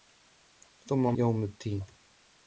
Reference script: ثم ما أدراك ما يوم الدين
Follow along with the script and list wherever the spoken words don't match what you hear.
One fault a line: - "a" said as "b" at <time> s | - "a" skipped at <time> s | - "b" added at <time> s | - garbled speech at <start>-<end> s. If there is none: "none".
- "ما أدراك ما" skipped at 1.2 s